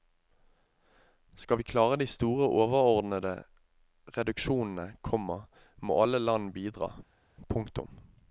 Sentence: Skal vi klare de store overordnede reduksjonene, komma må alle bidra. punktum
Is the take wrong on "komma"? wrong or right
right